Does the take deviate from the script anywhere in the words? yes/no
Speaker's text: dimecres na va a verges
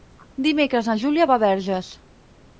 yes